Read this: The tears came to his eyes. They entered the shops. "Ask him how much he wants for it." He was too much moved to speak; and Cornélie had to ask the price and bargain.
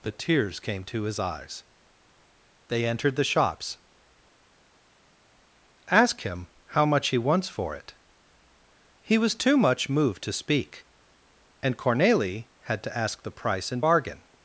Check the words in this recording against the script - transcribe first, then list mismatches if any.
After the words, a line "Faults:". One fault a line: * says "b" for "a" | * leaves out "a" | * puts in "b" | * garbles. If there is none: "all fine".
The tears came to his eyes. They entered the shops. "Ask him how much he wants for it." He was too much moved to speak; and Cornélie had to ask the price and bargain.
Faults:
all fine